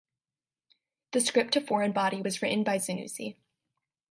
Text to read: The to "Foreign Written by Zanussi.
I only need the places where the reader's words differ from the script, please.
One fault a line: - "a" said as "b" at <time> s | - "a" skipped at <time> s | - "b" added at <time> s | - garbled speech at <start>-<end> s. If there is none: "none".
- "script" added at 1.2 s
- "Body was" added at 1.9 s